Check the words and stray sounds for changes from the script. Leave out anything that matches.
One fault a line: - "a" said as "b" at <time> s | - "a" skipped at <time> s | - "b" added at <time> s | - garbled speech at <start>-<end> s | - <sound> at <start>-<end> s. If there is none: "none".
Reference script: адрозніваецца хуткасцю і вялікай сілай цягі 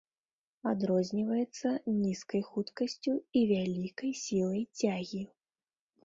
- "нізкай" added at 2.0 s